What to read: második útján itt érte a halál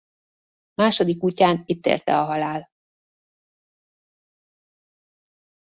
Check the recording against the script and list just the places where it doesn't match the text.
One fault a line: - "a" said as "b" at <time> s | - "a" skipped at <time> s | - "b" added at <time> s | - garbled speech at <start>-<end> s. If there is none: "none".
none